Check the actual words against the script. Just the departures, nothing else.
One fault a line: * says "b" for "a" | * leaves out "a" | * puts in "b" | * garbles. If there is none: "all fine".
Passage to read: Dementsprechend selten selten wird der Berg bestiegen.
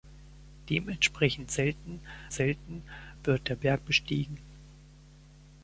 all fine